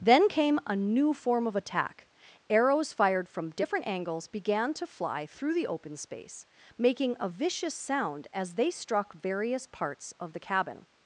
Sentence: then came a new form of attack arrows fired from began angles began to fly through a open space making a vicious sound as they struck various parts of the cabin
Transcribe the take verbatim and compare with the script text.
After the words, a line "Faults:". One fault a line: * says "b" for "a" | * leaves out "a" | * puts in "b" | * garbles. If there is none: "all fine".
then came a new form of attack arrows fired from different angles began to fly through the open space making a vicious sound as they struck various parts of the cabin
Faults:
* says "different" for "began"
* says "the" for "a"